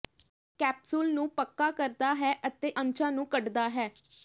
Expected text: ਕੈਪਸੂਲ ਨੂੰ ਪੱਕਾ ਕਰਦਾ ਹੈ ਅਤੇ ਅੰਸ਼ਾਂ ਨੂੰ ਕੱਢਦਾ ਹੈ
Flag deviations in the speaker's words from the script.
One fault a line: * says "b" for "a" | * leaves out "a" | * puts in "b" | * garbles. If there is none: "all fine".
all fine